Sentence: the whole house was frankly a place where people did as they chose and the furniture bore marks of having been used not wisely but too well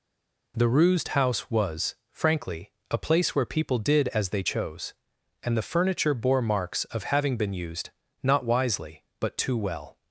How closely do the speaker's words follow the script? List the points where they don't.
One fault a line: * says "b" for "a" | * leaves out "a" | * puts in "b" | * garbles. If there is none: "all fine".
* says "rused" for "whole"